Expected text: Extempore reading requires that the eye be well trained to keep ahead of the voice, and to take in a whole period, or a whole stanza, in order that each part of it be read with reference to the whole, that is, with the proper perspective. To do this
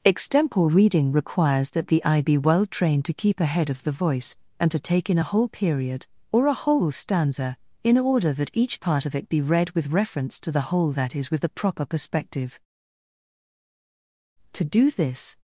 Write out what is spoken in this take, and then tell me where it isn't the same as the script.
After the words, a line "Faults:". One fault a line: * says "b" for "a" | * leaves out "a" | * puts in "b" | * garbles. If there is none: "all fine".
Extempore reading requires that the eye be well trained to keep ahead of the voice, and to take in a whole period, or a whole stanza, in order that each part of it be read with reference to the whole, that is, with the proper perspective. To do this
Faults:
all fine